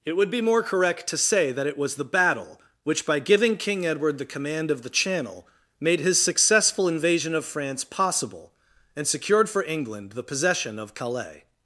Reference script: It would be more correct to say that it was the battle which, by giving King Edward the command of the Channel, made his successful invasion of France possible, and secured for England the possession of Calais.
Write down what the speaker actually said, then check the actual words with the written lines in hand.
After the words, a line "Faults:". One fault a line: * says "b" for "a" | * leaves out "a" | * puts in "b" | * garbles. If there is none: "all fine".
It would be more correct to say that it was the battle which, by giving King Edward the command of the Channel, made his successful invasion of France possible, and secured for England the possession of Calais.
Faults:
all fine